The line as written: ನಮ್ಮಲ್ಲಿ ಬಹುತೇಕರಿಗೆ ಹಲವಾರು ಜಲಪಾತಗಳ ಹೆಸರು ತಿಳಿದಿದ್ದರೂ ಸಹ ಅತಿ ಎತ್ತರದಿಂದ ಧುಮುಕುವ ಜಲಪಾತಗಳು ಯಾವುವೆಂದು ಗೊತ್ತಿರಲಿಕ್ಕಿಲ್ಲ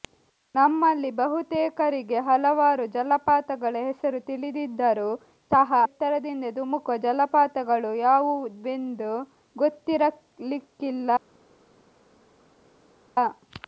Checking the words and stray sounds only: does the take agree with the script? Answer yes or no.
no